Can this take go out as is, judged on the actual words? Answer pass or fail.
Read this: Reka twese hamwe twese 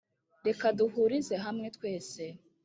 fail